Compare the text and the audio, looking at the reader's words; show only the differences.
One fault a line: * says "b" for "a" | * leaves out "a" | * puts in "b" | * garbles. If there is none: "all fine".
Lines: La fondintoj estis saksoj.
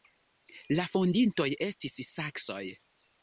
all fine